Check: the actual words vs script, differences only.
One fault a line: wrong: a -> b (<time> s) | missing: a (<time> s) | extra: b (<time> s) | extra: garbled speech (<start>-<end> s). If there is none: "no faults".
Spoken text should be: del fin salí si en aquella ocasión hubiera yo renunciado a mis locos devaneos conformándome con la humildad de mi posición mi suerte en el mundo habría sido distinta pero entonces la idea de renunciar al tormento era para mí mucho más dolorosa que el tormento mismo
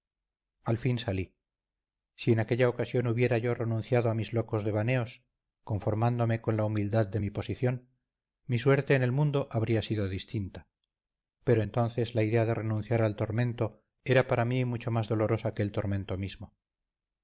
wrong: del -> al (0.6 s)